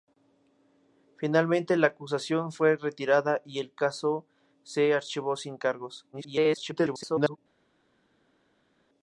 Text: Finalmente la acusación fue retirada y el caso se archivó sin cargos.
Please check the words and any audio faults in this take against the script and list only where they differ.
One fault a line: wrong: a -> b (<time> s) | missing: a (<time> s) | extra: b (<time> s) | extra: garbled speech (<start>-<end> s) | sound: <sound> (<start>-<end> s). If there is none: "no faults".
extra: garbled speech (6.1-7.4 s)